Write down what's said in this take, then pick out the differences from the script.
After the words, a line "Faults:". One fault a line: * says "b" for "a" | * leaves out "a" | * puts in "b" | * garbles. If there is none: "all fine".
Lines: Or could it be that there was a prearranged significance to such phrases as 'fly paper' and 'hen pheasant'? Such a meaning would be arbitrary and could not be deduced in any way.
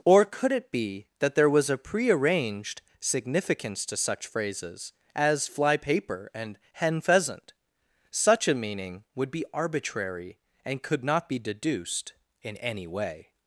Or could it be that there was a prearranged significance to such phrases as 'fly paper' and 'hen pheasant'? Such a meaning would be arbitrary and could not be deduced in any way.
Faults:
all fine